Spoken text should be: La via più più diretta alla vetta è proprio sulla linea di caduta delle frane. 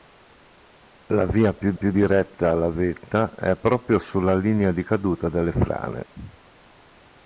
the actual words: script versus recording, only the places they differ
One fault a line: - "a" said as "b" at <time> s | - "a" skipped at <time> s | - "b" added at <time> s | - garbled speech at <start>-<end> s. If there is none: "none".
none